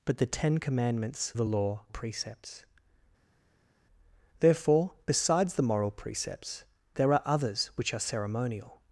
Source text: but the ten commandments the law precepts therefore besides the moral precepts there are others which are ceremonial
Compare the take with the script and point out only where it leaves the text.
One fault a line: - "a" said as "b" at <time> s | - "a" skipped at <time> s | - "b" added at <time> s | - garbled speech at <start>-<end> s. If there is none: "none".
none